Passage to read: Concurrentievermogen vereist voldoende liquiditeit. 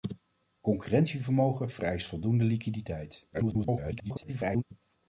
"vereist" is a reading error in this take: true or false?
false